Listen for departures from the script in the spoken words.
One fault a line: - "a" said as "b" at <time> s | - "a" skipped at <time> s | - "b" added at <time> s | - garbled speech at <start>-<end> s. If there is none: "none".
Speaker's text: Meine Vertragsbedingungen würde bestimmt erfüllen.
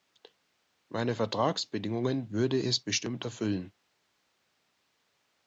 - "es" added at 2.6 s